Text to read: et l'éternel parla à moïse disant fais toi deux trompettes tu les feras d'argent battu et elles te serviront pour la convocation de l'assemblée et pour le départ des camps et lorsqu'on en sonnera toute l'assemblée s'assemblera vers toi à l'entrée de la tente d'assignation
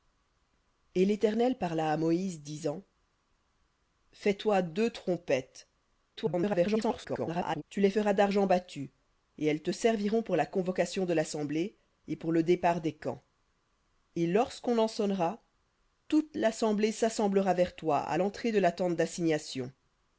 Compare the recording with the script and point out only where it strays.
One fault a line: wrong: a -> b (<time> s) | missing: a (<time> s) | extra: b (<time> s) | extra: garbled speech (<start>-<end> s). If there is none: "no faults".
extra: garbled speech (6.2-7.6 s)